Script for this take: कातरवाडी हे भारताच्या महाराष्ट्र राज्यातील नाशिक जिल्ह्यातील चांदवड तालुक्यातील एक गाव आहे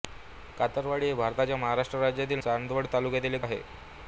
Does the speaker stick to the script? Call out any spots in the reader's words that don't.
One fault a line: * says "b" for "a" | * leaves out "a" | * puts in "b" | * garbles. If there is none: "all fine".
* leaves out "नाशिक जिल्ह्यातील"
* leaves out "गाव"